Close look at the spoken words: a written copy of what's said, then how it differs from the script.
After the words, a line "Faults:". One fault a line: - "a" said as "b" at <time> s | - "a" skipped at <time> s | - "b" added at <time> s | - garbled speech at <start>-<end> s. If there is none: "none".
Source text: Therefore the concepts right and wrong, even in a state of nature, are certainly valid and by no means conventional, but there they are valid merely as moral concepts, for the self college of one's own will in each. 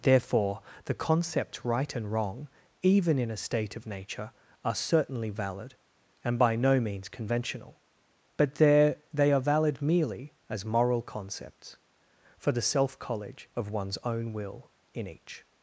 Therefore the concepts right and wrong, even in a state of nature, are certainly valid and by no means conventional, but there they are valid merely as moral concepts, for the self college of one's own will in each.
Faults:
none